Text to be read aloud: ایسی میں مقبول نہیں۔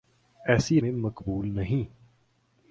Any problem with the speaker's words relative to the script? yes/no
no